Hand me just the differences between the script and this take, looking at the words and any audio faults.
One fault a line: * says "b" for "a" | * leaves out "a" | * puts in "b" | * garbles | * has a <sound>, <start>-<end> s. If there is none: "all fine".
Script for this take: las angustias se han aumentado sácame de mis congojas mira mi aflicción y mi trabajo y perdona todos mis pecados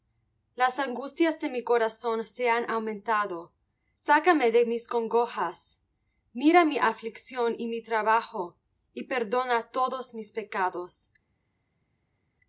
* puts in "de mi corazón"